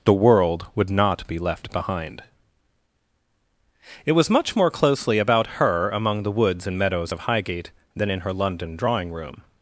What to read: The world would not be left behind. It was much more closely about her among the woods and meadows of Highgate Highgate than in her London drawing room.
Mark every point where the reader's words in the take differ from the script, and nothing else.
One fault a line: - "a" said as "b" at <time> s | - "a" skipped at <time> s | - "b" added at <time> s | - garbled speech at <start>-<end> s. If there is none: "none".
- "Highgate" skipped at 7.7 s